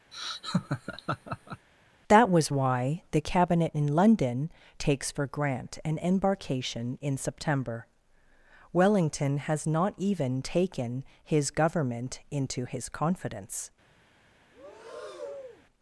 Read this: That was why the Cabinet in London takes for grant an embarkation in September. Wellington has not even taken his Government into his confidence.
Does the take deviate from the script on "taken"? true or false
false